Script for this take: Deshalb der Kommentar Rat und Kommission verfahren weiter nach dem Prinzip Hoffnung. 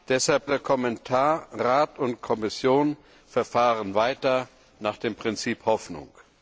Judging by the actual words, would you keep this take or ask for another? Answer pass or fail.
pass